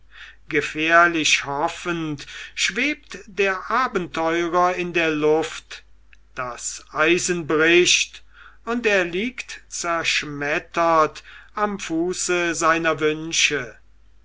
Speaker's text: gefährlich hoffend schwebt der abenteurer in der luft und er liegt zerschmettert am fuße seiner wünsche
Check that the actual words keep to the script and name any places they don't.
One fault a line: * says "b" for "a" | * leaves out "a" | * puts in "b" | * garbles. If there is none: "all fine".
* puts in "das eisen bricht"